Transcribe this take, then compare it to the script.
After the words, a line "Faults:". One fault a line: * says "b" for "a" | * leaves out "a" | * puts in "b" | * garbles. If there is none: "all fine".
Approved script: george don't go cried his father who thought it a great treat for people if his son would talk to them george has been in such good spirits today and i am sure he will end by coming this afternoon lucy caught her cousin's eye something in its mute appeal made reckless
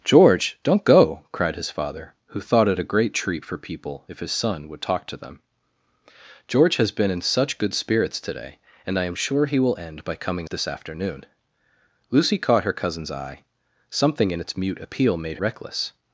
george don't go cried his father who thought it a great treat for people if his son would talk to them george has been in such good spirits today and i am sure he will end by coming this afternoon lucy caught her cousin's eye something in its mute appeal made reckless
Faults:
all fine